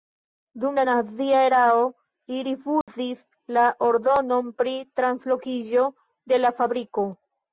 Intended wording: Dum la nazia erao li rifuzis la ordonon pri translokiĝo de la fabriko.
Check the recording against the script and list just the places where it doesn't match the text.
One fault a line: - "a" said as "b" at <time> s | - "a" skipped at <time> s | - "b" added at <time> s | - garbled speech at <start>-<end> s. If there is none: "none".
none